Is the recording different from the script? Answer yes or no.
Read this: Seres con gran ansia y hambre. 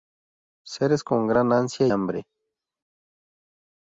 yes